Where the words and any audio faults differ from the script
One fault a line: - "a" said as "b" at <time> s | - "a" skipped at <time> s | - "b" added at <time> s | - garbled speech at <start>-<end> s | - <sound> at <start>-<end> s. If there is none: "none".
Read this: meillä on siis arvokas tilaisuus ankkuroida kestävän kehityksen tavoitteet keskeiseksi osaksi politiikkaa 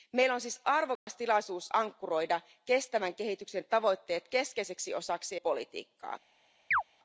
- dropout at 1.0-1.1 s
- chirp at 6.7-6.8 s